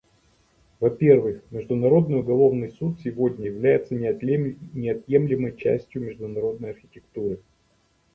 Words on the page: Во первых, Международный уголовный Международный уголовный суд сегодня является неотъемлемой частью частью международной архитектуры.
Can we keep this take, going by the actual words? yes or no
no